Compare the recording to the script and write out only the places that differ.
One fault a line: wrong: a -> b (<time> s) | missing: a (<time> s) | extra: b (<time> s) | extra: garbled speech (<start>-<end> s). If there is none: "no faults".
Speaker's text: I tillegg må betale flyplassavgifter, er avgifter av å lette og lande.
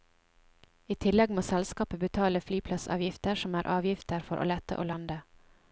extra: selskapet (1.5 s)
extra: som (3.5 s)
wrong: av -> for (4.3 s)